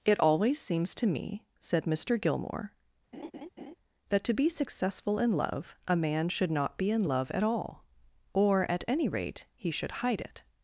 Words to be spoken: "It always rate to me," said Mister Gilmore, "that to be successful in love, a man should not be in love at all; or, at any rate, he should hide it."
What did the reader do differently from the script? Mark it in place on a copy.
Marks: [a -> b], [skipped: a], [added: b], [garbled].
"It always [rate -> seems] to me," said Mister Gilmore, "that to be successful in love, a man should not be in love at all; or, at any rate, he should hide it."